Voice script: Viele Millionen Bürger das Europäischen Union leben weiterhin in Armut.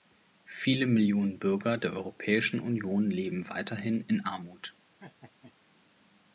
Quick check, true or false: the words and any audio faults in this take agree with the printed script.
false